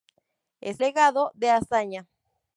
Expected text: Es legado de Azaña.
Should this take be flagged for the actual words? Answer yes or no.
no